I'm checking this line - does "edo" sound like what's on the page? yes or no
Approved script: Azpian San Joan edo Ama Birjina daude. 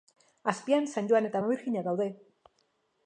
no